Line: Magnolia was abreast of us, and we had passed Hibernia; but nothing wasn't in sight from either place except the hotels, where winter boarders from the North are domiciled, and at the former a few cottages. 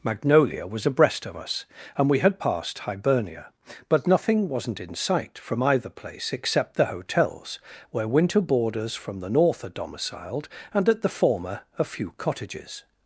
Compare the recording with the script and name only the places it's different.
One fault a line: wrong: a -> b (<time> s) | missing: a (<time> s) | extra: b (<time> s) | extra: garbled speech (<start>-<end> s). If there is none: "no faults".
no faults